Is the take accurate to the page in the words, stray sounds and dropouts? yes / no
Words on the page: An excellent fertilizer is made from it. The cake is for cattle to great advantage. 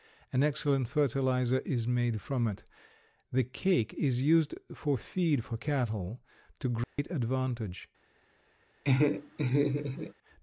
no